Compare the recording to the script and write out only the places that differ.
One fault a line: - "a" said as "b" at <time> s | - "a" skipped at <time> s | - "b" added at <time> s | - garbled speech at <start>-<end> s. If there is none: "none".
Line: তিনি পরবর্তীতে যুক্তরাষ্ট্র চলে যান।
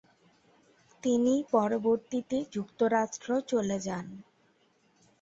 none